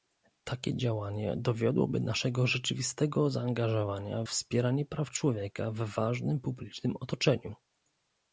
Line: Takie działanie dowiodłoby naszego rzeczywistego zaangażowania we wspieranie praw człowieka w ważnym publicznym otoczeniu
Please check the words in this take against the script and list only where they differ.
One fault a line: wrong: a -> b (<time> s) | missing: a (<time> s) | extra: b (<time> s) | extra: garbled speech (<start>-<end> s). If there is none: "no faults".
missing: we (4.2 s)